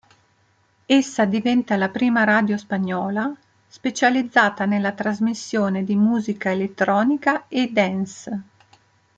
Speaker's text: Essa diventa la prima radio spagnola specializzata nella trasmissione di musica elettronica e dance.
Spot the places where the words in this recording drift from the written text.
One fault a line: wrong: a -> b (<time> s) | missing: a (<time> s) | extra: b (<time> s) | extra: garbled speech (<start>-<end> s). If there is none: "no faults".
no faults